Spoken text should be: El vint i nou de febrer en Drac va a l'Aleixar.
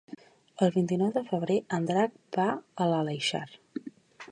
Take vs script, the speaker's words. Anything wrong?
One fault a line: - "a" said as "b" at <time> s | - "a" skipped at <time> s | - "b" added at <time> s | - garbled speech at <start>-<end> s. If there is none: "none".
none